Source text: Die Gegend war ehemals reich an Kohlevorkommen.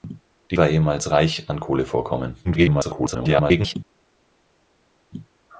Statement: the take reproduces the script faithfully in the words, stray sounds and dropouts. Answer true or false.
false